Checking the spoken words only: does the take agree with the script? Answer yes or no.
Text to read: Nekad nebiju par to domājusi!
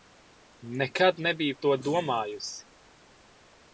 no